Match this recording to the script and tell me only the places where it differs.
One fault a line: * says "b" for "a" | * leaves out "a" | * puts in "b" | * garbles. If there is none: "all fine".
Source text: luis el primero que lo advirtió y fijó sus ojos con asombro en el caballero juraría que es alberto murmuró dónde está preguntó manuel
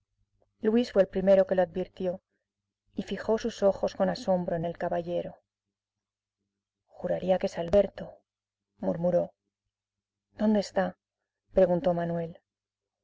* puts in "fue"